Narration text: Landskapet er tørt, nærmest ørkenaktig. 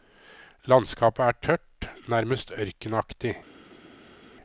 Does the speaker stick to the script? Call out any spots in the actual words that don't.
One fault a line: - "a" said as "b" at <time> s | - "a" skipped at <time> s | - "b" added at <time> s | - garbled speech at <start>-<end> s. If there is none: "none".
none